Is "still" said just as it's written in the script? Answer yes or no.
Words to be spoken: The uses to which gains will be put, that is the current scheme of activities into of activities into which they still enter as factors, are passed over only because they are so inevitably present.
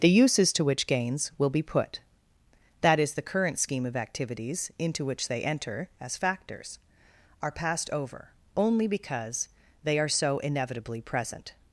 no